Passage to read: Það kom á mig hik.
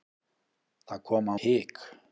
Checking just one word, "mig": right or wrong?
wrong